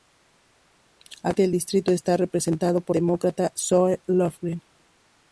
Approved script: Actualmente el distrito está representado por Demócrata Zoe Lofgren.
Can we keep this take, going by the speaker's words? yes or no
yes